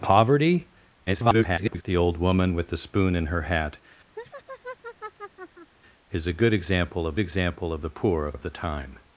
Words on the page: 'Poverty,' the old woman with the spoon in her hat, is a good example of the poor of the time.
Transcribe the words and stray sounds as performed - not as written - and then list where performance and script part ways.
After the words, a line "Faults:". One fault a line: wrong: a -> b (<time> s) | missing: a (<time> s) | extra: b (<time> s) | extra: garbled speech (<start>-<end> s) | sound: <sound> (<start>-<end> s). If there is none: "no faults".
'Poverty,' [garbled] the old woman with the spoon in her hat, is a good example of example of the poor of of the time.
Faults:
extra: garbled speech (1.1-1.8 s)
sound: laugh (4.2-5.7 s)
extra: example of (7.2 s)
extra: of (8.3 s)